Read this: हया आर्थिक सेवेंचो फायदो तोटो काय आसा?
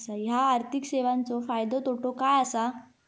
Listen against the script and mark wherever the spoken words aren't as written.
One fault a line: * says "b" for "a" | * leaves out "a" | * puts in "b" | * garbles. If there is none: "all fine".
all fine